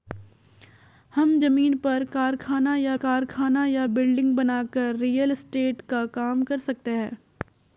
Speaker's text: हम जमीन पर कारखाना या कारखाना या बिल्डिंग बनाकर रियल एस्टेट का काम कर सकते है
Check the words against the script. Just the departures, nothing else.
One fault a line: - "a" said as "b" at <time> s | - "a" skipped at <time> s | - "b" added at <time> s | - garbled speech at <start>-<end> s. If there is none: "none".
none